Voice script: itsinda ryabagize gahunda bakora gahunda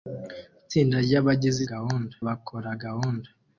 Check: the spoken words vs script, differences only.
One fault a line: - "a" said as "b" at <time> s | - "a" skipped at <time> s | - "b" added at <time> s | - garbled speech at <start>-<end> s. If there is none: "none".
none